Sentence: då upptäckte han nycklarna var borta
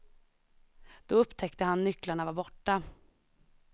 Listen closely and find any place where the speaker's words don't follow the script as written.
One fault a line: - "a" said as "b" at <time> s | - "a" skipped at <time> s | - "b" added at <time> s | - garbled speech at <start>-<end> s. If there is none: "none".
none